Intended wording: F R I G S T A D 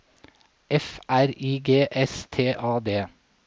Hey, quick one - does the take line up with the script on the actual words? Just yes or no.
yes